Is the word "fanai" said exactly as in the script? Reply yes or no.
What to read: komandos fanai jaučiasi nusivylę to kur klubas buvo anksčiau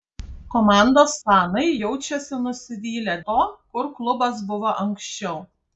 yes